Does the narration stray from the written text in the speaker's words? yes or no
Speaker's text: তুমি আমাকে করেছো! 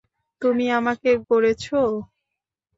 no